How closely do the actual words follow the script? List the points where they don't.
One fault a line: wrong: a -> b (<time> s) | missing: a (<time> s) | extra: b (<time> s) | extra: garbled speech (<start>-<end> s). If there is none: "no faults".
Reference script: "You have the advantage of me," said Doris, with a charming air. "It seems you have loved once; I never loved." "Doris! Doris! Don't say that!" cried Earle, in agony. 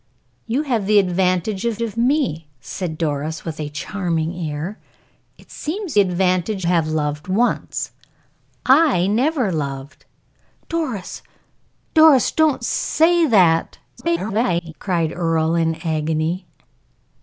extra: of (1.8 s)
wrong: you -> advantage (6.0 s)
extra: garbled speech (14.0-14.7 s)